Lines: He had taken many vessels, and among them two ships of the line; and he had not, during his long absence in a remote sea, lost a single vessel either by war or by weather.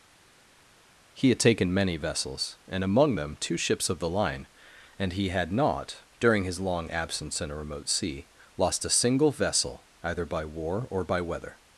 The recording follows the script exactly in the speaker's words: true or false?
true